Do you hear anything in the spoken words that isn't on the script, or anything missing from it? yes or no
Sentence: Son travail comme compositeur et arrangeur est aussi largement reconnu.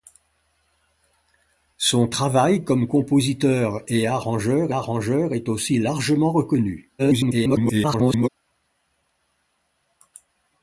yes